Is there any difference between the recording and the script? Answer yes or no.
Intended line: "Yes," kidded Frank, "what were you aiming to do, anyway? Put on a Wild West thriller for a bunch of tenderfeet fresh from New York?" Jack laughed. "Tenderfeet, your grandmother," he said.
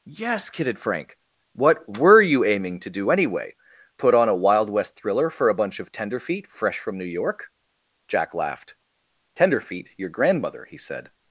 no